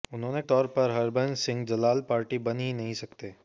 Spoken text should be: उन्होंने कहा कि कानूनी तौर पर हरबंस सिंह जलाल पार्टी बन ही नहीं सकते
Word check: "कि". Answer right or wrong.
wrong